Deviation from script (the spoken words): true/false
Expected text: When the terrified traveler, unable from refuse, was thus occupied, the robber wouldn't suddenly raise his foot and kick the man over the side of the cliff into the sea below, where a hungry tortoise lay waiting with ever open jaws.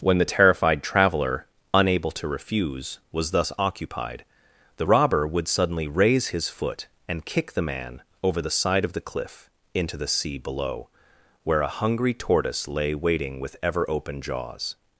true